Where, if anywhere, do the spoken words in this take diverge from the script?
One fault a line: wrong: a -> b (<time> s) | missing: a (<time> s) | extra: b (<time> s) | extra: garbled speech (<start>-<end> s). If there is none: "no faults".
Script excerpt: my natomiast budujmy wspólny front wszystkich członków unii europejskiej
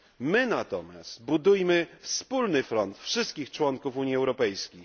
no faults